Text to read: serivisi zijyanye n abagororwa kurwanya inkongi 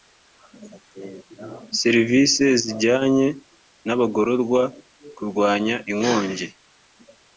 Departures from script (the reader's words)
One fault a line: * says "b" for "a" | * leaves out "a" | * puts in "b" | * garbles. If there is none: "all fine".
all fine